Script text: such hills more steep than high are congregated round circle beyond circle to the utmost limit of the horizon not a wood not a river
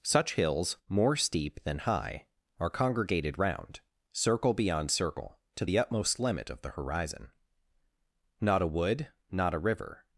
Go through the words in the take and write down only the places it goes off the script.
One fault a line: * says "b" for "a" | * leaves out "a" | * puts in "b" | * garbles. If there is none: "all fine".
all fine